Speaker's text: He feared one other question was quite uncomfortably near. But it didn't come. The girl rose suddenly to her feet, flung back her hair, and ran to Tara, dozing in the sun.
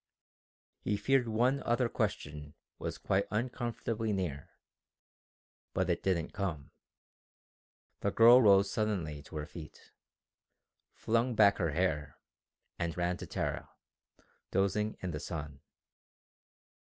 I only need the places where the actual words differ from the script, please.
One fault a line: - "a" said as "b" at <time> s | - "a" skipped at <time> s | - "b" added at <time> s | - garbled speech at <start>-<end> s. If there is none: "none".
none